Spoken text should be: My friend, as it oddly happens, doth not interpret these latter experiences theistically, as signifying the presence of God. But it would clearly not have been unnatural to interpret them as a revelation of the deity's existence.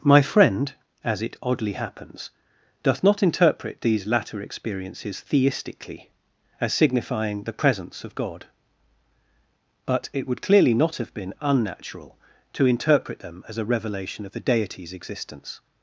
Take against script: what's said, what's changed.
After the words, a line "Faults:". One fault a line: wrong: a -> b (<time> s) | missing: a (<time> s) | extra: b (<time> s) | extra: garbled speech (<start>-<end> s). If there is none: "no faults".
My friend, as it oddly happens, doth not interpret these latter experiences theistically, as signifying the presence of God. But it would clearly not have been unnatural to interpret them as a revelation of the deity's existence.
Faults:
no faults